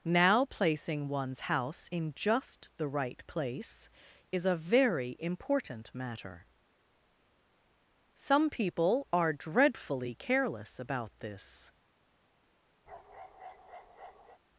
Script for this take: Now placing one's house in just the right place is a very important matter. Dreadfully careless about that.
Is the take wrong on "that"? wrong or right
wrong